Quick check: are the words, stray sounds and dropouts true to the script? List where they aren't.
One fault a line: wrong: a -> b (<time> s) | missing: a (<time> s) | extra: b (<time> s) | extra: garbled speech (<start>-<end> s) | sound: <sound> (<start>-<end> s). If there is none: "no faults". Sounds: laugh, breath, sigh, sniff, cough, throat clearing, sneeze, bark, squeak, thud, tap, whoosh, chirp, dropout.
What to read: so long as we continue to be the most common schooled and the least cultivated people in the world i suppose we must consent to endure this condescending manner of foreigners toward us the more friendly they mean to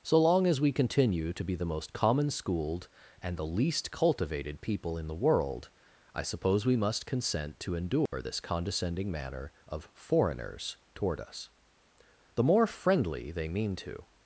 sound: dropout (8.1-8.1 s)